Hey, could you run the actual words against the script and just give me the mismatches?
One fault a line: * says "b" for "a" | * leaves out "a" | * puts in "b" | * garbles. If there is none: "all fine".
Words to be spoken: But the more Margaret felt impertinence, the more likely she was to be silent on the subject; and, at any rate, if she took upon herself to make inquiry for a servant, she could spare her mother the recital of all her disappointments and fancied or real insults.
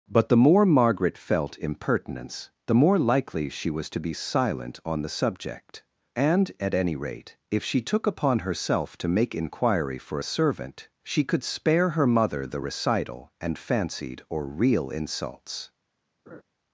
* leaves out "of all her disappointments"